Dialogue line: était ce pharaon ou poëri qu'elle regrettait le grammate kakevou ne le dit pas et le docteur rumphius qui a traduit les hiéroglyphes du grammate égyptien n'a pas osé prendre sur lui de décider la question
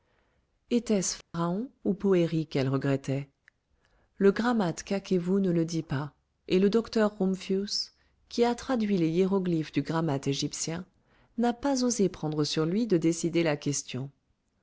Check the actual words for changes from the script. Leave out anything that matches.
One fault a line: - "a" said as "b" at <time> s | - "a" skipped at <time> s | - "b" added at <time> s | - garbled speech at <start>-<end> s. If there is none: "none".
none